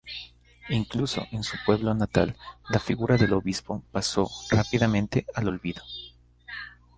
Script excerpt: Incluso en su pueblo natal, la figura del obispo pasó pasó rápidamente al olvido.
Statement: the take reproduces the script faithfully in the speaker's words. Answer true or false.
false